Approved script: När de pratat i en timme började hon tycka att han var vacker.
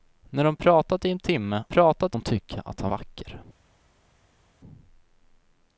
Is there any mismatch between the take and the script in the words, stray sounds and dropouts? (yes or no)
yes